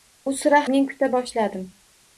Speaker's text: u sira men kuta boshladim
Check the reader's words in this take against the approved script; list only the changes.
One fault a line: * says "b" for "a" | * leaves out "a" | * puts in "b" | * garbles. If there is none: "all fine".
all fine